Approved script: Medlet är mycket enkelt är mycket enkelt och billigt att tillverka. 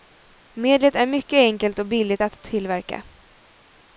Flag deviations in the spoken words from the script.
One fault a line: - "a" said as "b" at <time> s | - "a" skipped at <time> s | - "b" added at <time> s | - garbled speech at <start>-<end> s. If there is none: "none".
- "är mycket enkelt" skipped at 1.8 s